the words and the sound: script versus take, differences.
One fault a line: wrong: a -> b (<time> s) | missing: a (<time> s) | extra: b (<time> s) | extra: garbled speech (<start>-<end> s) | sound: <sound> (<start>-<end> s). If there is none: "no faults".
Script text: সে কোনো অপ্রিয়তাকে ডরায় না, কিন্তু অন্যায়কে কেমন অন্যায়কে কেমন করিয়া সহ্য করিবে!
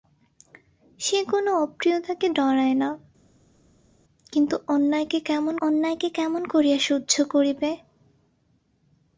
no faults